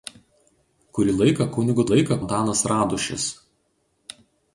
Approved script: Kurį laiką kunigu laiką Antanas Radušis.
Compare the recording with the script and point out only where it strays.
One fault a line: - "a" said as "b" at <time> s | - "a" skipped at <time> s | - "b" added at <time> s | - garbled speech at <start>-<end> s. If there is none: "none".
none